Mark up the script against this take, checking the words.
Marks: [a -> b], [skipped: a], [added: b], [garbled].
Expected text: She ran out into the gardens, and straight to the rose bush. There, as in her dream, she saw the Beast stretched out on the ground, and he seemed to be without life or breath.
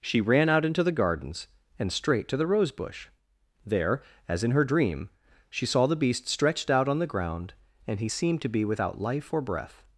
She ran out into the gardens, and straight to the rose bush. There, as in her dream, she saw the Beast stretched out on the ground, and he seemed to be without life or breath.